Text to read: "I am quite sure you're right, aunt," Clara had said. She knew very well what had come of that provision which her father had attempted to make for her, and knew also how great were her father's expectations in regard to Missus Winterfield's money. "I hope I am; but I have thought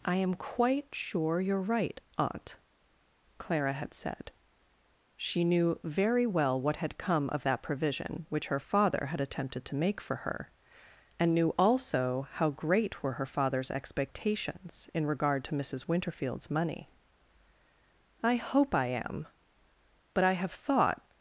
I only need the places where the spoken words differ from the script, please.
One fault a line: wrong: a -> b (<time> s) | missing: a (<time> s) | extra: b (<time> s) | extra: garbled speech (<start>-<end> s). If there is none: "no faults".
no faults